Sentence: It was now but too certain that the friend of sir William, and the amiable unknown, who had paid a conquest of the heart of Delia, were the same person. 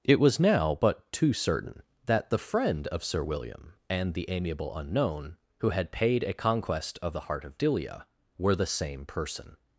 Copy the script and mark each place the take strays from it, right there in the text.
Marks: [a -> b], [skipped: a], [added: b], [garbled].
It was now but too certain that the friend of sir William, and the amiable unknown, who had paid a conquest of the heart of Delia, were the same person.